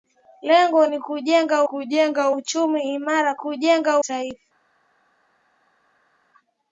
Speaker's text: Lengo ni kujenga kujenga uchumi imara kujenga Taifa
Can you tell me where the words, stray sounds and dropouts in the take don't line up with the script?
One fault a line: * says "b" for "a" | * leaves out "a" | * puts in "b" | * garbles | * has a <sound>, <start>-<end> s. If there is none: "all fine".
all fine